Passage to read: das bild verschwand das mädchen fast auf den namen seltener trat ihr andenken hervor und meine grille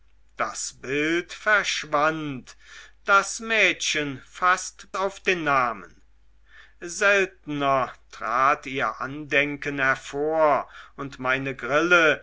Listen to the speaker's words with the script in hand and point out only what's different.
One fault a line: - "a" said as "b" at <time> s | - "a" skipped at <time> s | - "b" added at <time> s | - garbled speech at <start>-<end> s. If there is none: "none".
none